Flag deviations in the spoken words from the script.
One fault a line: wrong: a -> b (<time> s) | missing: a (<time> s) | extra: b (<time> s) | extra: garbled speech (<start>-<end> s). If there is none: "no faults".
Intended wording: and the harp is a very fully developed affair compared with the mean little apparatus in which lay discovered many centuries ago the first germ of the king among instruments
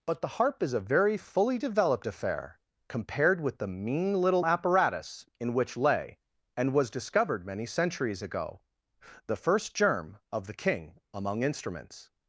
wrong: and -> but (0.1 s)
extra: and was (6.6 s)